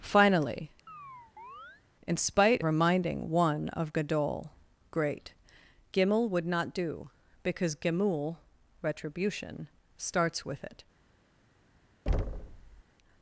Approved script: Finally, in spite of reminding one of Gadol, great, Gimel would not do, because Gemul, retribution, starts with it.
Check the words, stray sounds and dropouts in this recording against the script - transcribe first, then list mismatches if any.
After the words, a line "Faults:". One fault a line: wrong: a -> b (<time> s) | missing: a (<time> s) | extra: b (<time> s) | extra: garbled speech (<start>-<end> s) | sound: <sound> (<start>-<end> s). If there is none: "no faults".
Finally, in spite reminding one of Gadol, great, Gimel would not do, because Gemul, retribution, starts with it.
Faults:
sound: chirp (0.9-1.8 s)
missing: of (2.6 s)
sound: thud (12.1-12.8 s)